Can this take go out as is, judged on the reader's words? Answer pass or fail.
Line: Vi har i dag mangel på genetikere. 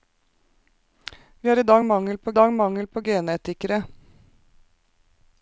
fail